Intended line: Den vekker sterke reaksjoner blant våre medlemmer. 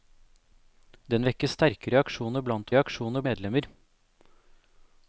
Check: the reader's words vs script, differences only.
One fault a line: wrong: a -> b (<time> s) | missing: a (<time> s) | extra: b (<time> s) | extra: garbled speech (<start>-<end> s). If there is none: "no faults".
wrong: våre -> reaksjoner (2.8 s)